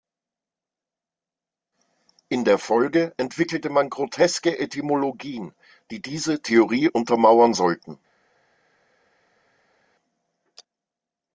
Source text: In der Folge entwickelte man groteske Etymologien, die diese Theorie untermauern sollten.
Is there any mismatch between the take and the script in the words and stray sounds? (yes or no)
no